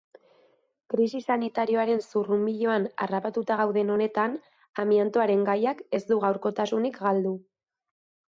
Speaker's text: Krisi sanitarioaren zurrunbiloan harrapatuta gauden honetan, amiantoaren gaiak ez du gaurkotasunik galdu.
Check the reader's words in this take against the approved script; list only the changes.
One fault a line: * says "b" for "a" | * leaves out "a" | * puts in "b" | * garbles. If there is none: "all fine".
all fine